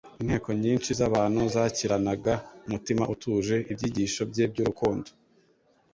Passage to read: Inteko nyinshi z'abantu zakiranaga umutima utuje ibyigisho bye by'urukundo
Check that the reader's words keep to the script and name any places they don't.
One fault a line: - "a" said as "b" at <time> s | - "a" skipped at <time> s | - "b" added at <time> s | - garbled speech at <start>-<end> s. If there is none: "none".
none